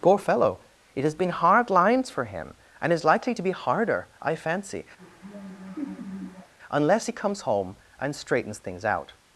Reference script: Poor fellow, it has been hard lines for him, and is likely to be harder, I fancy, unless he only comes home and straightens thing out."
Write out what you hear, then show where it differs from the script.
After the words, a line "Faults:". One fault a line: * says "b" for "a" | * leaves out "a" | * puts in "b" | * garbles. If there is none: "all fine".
Poor fellow, it has been hard lines for him, and is likely to be harder, I fancy, unless he comes home and straightens things out."
Faults:
* leaves out "only"
* says "things" for "thing"